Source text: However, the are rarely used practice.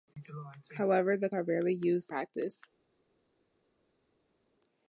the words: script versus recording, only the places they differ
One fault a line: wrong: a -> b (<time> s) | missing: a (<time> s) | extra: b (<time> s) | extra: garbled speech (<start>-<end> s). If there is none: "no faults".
no faults